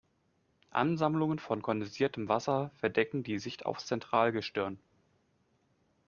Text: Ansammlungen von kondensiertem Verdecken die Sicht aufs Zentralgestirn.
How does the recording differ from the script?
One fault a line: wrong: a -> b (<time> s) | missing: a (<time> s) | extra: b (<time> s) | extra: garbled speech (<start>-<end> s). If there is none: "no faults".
extra: Wasser (2.3 s)